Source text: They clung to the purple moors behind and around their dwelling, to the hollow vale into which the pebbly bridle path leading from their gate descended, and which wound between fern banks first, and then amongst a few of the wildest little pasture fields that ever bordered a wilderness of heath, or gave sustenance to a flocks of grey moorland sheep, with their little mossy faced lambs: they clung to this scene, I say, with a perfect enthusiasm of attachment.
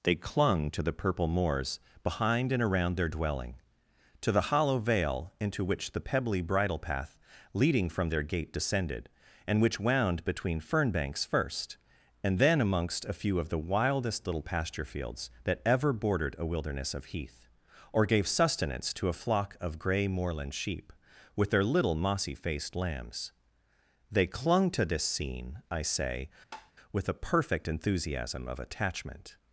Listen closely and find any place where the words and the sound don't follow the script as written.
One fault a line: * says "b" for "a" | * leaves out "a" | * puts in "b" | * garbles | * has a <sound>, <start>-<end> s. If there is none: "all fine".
* says "flock" for "flocks"
* has a tap, 26.5-26.7 s